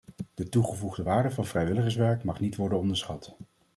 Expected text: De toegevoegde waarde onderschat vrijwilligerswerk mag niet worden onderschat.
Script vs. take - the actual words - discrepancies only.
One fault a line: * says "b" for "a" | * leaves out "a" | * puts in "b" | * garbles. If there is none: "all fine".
* says "van" for "onderschat"